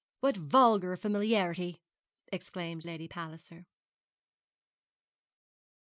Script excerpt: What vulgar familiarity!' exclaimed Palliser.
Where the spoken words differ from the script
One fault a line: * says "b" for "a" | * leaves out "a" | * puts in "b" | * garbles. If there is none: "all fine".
* puts in "Lady"